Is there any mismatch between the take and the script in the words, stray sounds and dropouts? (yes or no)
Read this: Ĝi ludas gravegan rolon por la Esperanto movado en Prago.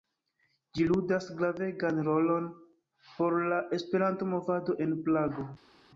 no